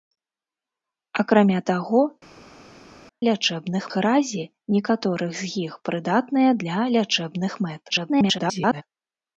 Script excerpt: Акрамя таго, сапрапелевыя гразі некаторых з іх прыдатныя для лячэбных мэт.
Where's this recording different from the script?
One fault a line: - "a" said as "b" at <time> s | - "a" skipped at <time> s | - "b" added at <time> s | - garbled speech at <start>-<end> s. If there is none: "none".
- "сапрапелевыя" said as "лячэбных" at 3.3 s
- garbled speech at 7.9-8.8 s